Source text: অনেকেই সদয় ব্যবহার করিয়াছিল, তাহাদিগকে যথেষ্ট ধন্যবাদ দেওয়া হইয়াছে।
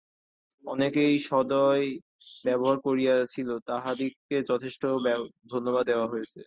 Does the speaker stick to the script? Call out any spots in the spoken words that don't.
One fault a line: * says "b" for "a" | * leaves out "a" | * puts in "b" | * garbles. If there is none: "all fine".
all fine